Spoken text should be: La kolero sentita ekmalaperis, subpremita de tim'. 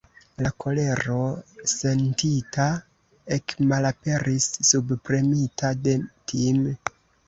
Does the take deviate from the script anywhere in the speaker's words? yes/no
no